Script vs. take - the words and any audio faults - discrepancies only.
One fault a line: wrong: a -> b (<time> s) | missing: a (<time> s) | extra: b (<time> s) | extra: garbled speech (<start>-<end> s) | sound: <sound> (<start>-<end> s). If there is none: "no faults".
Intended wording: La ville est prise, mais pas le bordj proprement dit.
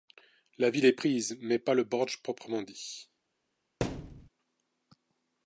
sound: thud (3.8-4.3 s)